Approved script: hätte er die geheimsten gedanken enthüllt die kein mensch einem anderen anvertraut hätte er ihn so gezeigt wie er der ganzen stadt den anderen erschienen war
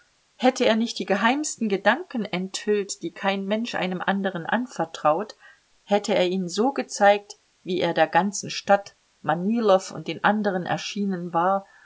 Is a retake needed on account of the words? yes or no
yes